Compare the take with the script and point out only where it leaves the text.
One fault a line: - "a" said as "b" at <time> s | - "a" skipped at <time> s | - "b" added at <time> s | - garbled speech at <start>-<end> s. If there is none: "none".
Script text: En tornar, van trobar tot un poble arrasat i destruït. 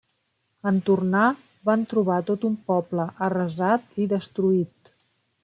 none